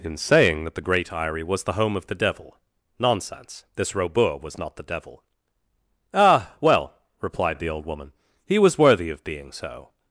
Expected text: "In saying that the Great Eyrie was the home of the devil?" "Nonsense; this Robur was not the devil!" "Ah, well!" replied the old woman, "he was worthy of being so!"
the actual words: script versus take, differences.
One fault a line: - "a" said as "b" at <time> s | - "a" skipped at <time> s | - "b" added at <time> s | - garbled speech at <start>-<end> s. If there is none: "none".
none